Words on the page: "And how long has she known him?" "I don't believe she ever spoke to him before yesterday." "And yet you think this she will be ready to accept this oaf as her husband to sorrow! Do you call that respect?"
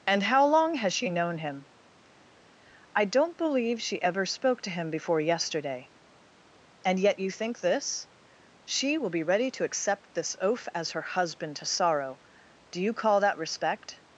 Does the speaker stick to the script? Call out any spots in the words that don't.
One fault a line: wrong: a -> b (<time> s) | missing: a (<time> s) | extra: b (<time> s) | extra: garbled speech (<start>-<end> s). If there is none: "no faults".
no faults